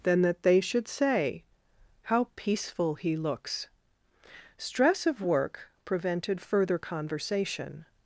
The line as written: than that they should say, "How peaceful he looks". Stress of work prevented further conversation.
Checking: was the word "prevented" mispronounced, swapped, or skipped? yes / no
no